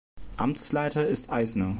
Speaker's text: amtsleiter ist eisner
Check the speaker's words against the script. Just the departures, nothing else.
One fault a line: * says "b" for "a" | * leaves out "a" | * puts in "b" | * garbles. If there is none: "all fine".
all fine